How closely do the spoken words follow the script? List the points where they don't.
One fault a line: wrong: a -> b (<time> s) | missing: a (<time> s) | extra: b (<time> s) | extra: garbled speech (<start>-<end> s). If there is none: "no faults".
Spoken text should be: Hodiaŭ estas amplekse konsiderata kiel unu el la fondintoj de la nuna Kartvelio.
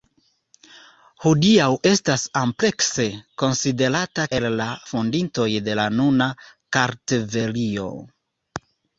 missing: kiel unu (4.2 s)